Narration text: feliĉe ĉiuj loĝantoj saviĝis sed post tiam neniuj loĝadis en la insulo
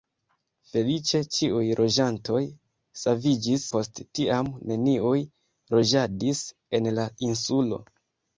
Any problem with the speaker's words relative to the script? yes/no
yes